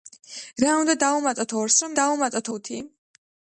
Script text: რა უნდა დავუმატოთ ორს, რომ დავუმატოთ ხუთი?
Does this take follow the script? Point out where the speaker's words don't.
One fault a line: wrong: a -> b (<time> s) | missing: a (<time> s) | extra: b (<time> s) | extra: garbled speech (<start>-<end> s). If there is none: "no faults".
no faults